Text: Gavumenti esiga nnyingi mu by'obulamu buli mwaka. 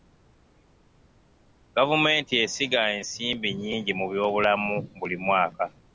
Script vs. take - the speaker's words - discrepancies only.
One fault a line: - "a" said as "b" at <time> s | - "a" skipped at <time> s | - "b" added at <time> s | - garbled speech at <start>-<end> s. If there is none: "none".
- "ensimbi" added at 3.0 s